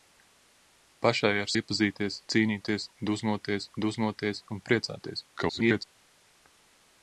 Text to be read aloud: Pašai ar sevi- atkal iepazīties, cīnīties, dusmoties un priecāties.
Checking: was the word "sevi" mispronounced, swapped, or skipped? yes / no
yes